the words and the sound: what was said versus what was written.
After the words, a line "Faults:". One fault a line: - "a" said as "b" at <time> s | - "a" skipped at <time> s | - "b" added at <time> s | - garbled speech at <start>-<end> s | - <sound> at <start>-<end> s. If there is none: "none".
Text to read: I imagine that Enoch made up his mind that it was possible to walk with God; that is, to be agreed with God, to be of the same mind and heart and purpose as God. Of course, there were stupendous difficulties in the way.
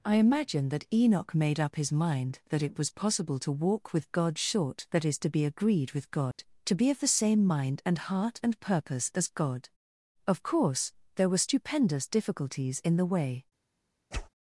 I imagine that Enoch made up his mind that it was possible to walk with God; short that is, to be agreed with God, to be of the same mind and heart and purpose as God. Of course, there were stupendous difficulties in the way.
Faults:
- "short" added at 4.4 s
- dropout at 6.3-6.4 s
- whoosh at 14.1-14.3 s